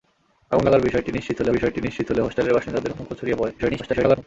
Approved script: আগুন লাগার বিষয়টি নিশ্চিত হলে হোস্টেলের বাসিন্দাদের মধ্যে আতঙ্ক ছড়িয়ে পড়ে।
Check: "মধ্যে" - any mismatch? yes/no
yes